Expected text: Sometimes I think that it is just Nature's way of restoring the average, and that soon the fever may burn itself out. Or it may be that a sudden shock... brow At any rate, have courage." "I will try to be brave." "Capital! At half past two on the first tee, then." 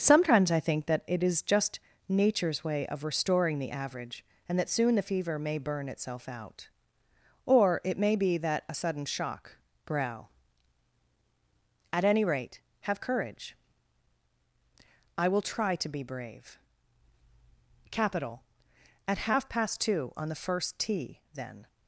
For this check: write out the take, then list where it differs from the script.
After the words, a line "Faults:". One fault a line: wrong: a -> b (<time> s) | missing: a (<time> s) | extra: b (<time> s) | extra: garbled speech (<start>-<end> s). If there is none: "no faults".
Sometimes I think that it is just Nature's way of restoring the average, and that soon the fever may burn itself out. Or it may be that a sudden shock... brow At any rate, have courage." "I will try to be brave." "Capital! At half past two on the first tee, then."
Faults:
no faults